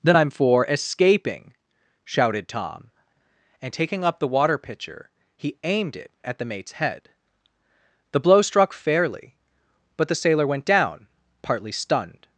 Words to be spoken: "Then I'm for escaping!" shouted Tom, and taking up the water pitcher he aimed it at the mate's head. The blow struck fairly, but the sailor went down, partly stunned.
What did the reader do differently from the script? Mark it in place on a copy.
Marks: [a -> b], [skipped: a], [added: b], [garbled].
"Then I'm for escaping!" shouted Tom, and taking up the water pitcher he aimed it at the mate's head. The blow struck fairly, but the sailor went down, partly stunned.